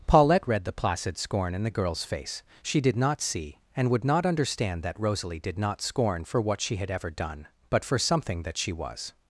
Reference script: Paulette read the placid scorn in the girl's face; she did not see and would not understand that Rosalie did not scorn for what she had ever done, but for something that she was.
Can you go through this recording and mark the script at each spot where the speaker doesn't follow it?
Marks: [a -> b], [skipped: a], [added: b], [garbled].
Paulette read the placid scorn in the girl's face; she did not see and would not understand that Rosalie did not scorn for what she had ever done, but for something that she was.